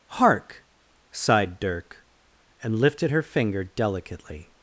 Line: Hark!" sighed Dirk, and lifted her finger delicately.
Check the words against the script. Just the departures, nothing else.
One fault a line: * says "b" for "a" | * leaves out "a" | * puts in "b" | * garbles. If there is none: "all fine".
all fine